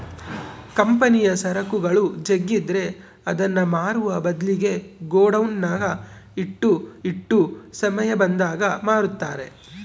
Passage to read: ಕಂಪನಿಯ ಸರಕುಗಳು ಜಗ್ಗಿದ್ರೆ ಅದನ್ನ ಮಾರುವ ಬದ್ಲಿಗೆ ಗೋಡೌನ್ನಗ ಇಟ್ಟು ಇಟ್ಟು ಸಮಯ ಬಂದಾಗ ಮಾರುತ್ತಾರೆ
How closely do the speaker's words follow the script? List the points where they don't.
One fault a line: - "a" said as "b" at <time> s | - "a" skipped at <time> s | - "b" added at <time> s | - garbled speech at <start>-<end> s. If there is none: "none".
none